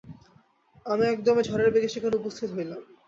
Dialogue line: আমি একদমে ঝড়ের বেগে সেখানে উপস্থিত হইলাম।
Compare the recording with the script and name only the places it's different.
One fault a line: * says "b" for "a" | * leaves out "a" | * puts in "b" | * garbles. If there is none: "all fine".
all fine